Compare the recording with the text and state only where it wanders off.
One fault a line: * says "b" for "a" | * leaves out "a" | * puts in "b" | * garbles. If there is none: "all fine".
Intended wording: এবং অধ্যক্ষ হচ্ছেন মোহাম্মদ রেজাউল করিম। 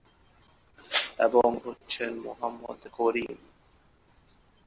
* leaves out "অধ্যক্ষ"
* leaves out "রেজাউল"